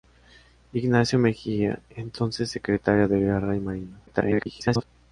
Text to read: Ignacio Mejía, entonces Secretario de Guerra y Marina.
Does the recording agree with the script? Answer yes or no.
no